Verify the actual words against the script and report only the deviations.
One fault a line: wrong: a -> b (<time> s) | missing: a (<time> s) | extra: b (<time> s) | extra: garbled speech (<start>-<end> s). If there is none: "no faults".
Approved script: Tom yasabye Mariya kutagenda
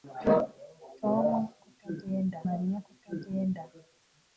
wrong: yasabye -> kutagenda (1.6 s)